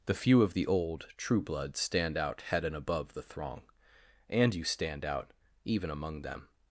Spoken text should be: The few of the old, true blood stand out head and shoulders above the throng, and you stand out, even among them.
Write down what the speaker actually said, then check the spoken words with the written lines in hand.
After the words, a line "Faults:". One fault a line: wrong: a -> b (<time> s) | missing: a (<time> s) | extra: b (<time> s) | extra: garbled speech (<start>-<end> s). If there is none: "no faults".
The few of the old, true blood stand out head and above the throng, and you stand out, even among them.
Faults:
missing: shoulders (2.8 s)